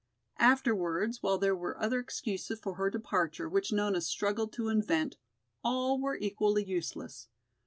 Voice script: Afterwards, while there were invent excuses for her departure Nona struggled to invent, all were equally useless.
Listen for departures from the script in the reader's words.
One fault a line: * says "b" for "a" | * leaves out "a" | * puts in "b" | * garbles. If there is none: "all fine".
* says "other" for "invent"
* puts in "which"